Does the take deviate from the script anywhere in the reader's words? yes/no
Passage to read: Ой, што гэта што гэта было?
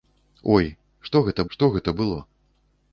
no